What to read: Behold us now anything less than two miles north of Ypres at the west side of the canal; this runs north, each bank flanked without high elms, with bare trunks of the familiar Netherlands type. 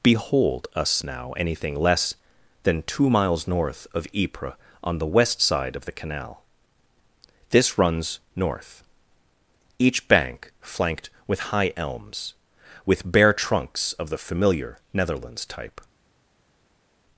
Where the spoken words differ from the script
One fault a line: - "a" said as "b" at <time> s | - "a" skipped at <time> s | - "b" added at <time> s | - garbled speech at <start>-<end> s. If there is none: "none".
- "at" said as "on" at 4.8 s
- "without" said as "with" at 11.3 s